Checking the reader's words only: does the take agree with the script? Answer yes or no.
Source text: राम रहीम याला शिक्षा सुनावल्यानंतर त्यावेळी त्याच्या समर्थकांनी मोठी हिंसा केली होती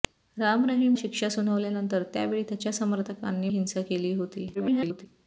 no